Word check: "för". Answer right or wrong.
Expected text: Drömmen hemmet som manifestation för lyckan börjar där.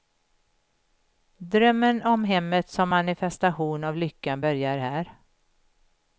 wrong